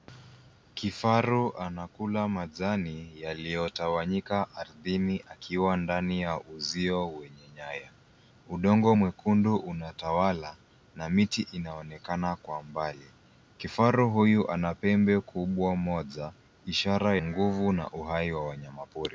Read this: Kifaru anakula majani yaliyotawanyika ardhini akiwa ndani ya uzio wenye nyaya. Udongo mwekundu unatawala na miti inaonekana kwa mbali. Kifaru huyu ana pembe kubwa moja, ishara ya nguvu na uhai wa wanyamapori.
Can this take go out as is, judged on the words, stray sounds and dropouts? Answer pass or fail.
fail